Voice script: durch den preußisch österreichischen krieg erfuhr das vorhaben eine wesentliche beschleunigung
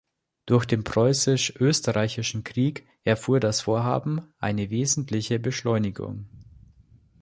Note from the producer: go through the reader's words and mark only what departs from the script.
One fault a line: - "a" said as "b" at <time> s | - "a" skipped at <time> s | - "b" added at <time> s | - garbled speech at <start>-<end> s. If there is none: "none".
none